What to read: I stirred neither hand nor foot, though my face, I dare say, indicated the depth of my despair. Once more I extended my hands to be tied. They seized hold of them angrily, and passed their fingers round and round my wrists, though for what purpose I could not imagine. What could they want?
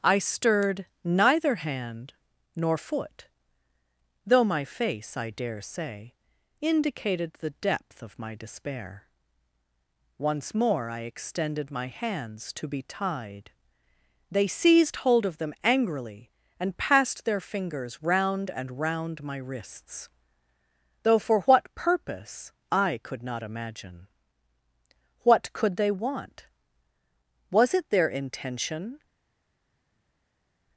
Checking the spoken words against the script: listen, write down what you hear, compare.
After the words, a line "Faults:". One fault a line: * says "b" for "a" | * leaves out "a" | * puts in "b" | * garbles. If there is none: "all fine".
I stirred neither hand nor foot, though my face, I dare say, indicated the depth of my despair. Once more I extended my hands to be tied. They seized hold of them angrily, and passed their fingers round and round my wrists, though for what purpose I could not imagine. What could they want? Was it their intention
Faults:
* puts in "Was it their intention"